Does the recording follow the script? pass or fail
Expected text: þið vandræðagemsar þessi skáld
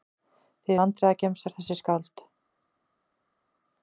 pass